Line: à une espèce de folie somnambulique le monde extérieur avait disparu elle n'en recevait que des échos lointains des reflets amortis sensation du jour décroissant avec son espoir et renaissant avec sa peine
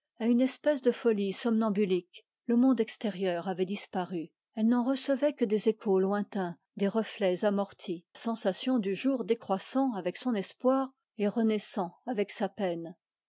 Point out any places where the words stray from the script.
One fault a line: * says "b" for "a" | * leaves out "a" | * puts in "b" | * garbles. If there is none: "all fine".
all fine